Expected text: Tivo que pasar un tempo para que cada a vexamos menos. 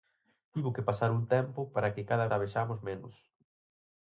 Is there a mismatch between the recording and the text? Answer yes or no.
no